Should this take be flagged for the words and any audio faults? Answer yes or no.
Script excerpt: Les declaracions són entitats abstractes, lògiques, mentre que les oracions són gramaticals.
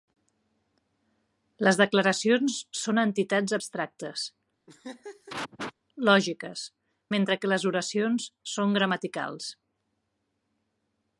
yes